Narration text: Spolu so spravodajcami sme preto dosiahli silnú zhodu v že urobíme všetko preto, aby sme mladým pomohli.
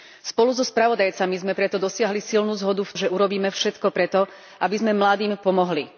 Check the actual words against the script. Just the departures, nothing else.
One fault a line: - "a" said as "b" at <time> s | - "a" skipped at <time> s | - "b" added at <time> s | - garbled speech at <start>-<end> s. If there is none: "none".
none